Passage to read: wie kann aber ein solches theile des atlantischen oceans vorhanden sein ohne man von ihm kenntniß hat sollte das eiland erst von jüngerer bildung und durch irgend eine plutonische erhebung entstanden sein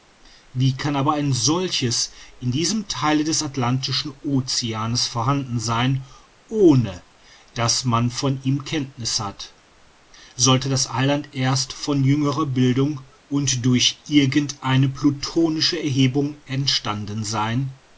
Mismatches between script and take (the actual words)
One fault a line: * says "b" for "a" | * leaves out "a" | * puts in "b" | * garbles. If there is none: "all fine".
* puts in "in diesem"
* puts in "daß"